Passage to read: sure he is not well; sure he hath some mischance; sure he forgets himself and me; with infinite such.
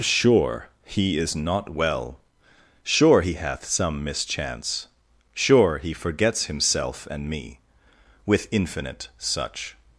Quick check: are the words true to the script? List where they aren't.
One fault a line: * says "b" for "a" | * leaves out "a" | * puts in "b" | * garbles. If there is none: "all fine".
all fine